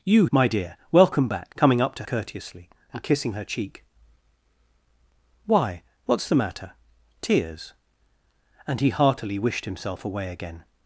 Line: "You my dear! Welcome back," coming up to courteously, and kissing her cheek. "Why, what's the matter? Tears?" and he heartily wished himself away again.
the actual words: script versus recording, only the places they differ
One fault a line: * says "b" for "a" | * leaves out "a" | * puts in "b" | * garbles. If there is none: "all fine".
all fine